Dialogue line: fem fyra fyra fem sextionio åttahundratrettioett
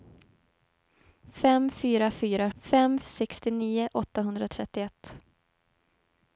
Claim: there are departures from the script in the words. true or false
false